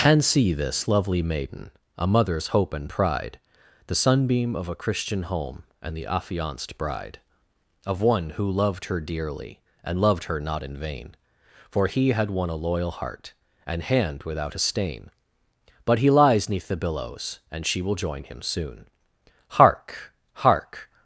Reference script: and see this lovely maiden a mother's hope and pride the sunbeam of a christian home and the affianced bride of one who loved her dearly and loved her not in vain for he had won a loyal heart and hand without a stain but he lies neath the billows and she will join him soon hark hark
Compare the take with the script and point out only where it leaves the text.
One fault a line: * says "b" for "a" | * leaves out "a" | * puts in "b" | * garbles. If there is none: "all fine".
all fine